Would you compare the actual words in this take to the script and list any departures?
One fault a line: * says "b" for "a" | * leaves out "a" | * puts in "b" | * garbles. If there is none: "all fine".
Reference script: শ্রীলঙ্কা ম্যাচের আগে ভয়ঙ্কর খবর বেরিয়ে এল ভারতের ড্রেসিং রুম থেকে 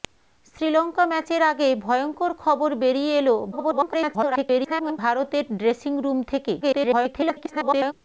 * garbles
* garbles